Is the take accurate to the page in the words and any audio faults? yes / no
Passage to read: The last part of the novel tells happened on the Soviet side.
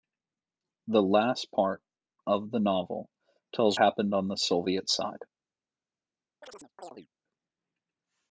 no